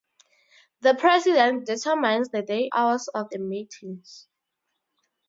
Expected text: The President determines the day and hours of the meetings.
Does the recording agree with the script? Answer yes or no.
no